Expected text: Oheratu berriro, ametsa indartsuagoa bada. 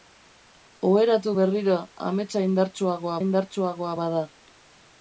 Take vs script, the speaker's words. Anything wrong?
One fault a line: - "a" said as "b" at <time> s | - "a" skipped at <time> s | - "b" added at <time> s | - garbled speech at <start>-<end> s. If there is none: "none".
- "indartsuagoa" added at 3.2 s